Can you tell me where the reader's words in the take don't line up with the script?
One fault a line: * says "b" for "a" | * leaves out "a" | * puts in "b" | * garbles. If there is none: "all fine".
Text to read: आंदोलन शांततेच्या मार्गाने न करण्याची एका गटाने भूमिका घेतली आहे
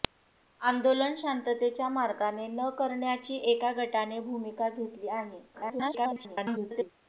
* garbles